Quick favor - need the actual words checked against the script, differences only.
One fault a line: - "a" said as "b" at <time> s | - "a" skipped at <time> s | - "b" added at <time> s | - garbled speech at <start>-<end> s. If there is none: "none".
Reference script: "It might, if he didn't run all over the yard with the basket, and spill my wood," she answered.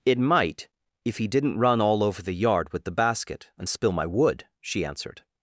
none